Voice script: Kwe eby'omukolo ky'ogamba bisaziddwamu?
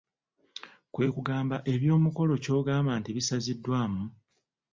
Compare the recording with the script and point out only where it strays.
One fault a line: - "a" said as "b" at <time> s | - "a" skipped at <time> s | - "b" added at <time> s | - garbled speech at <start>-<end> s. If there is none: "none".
- "kugamba" added at 1.1 s
- "nti" added at 3.0 s